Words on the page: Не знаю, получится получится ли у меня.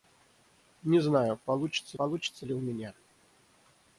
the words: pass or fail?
pass